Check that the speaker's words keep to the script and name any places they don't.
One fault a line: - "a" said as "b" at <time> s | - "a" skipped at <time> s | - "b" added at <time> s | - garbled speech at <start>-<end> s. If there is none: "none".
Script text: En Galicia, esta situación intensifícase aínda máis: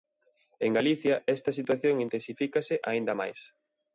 none